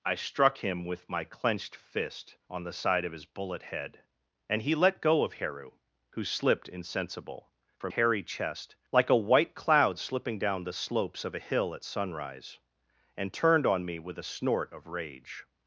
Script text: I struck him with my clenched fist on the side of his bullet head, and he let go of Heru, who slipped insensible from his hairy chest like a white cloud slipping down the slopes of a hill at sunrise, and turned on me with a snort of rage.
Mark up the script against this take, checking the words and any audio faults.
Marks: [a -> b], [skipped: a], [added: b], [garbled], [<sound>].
I struck him with my clenched fist on the side of his bullet head, and he let go of Heru, who slipped insensible from [skipped: his] hairy chest like a white cloud slipping down the slopes of a hill at sunrise, and turned on me with a snort of rage.